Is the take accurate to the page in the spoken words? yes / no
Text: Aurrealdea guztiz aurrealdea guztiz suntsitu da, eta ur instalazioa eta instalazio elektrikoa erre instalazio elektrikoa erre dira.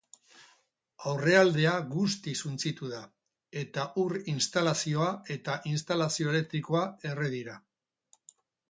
no